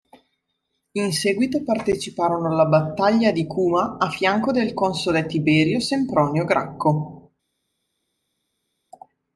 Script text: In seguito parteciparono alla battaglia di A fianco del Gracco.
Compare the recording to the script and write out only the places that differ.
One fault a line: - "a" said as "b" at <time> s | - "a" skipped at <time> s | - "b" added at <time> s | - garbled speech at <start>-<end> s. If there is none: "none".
- "Cuma" added at 3.5 s
- "console Tiberio Sempronio" added at 4.7 s